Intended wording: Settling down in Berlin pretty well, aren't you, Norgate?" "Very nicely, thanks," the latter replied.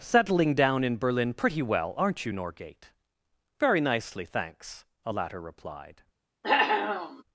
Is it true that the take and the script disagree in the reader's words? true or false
true